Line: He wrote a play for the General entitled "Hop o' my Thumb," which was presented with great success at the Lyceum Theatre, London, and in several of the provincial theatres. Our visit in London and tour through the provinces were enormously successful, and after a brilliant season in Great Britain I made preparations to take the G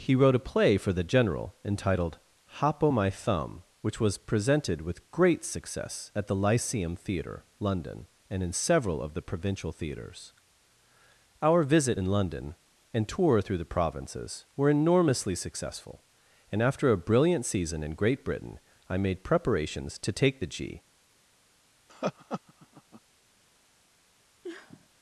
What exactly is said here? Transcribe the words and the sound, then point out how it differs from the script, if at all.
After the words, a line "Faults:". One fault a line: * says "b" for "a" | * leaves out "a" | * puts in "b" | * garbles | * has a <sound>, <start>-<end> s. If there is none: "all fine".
He wrote a play for the General entitled "Hop o' my Thumb," which was presented with great success at the Lyceum Theatre, London, and in several of the provincial theatres. Our visit in London and tour through the provinces were enormously successful, and after a brilliant season in Great Britain I made preparations to take the G
Faults:
* has a laugh, 21.9-23.0 s
* has a sniff, 24.4-24.9 s